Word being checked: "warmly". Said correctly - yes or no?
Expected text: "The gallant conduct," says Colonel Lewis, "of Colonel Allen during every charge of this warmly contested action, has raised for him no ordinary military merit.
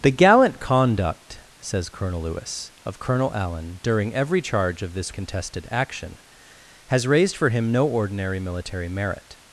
no